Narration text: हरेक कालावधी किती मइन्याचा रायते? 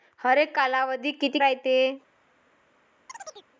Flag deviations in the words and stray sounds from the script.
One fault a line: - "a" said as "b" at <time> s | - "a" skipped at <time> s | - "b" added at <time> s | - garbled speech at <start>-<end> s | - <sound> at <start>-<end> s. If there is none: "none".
- "मइन्याचा" skipped at 1.4 s
- chirp at 3.1-3.5 s